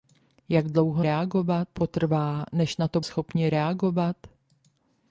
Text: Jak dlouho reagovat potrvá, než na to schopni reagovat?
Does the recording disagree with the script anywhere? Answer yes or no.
no